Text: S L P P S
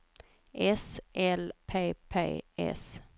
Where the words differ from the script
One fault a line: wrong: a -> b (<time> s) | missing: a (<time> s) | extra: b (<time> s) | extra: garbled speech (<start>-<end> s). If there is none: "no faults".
no faults